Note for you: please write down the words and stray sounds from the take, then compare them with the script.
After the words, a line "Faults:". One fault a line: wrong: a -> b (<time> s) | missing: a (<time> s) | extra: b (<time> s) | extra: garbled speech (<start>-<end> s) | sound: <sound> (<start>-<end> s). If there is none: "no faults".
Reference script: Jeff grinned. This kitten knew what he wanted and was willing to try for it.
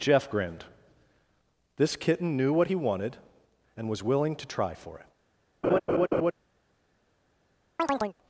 Jeff grinned. This kitten knew what he wanted and was willing to try for it.
Faults:
sound: laugh (5.6-6.3 s)
sound: chirp (7.8-8.2 s)